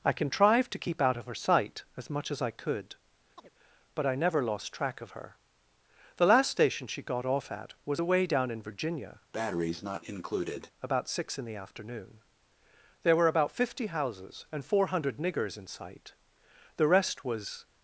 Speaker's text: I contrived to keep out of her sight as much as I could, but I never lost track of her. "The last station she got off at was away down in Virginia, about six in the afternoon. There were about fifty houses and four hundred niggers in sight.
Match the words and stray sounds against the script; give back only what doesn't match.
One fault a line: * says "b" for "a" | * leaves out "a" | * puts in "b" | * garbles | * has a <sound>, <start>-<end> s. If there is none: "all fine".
* has a chirp, 3.4-3.5 s
* has a breath, 9.3-10.7 s
* puts in "The rest was"